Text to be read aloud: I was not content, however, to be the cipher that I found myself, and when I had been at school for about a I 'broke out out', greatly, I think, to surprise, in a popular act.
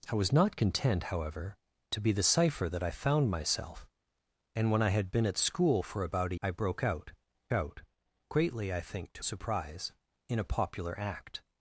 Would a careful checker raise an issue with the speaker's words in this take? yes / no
no